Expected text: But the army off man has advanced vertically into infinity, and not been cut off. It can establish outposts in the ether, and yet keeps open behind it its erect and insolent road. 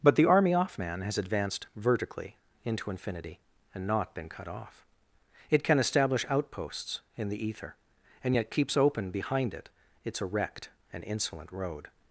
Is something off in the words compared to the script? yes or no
no